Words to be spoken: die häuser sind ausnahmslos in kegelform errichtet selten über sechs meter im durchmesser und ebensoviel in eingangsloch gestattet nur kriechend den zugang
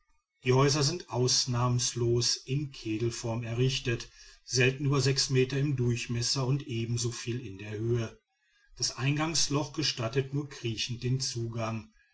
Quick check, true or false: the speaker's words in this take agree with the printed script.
false